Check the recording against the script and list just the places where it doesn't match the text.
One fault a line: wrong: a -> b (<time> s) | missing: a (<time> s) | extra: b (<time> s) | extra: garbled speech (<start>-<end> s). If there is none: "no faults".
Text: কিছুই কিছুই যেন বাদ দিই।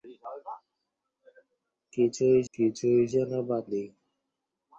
no faults